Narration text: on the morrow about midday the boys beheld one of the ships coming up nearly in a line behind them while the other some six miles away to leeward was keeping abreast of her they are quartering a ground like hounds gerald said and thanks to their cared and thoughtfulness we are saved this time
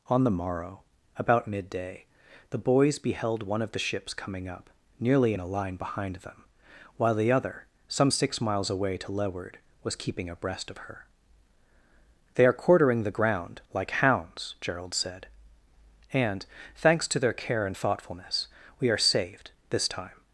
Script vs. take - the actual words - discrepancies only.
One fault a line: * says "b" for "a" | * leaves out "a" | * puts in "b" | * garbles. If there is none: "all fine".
* says "the" for "a"
* says "care" for "cared"